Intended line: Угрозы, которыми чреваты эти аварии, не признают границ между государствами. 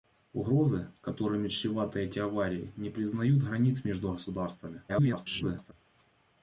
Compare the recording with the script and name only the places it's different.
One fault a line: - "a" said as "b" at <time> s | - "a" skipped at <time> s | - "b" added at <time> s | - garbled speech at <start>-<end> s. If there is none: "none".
- garbled speech at 4.9-5.7 s